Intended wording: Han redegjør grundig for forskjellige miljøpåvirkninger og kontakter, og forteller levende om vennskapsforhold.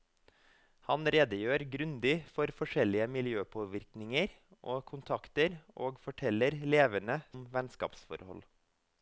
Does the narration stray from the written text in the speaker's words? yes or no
no